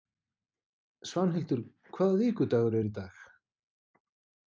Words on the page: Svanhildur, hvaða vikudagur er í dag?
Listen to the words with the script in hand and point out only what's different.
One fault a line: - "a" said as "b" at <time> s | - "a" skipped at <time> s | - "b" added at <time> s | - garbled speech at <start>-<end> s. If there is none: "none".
none